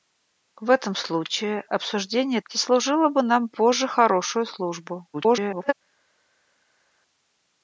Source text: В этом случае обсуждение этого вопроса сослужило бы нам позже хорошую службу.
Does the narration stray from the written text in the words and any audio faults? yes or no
yes